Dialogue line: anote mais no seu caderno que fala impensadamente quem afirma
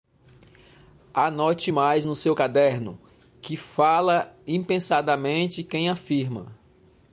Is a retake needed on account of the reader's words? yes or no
no